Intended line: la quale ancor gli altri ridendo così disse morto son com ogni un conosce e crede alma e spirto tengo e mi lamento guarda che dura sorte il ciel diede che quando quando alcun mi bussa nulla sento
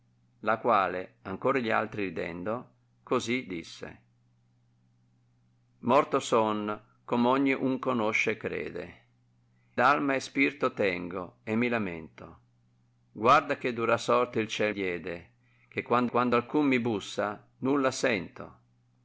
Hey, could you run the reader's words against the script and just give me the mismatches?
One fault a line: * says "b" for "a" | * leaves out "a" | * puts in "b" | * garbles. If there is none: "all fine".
all fine